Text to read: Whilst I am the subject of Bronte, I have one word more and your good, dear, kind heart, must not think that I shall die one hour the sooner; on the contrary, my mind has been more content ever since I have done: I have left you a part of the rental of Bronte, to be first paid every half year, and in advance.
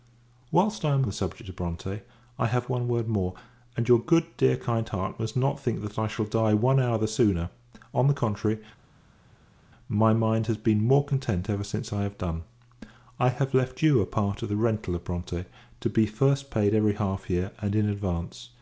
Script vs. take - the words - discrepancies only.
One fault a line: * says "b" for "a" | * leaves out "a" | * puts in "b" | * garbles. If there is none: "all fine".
all fine